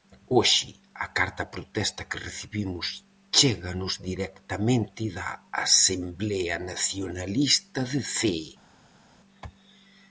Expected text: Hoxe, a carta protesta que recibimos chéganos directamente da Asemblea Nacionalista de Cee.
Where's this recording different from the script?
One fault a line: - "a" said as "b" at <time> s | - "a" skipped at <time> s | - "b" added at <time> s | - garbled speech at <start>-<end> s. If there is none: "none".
none